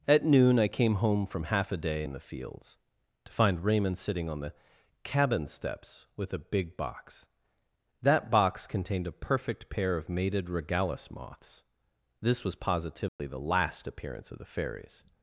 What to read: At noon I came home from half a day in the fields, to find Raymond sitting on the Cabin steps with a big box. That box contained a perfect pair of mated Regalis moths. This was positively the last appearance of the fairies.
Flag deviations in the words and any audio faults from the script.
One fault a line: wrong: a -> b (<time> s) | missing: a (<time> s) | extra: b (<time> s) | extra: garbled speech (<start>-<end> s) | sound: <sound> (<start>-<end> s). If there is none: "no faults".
sound: dropout (13.1-13.2 s)